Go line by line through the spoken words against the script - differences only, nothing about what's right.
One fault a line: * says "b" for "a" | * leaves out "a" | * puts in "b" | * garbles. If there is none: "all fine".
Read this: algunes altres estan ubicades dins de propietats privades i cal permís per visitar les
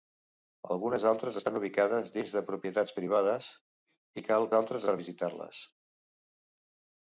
* says "altres" for "permís"